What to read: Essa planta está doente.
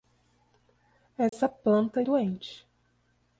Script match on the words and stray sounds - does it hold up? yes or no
no